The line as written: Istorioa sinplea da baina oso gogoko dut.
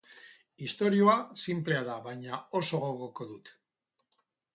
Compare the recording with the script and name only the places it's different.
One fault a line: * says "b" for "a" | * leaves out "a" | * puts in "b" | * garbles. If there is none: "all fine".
all fine